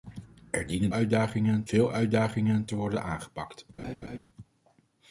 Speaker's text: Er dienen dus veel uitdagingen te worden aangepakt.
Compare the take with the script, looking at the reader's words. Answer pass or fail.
fail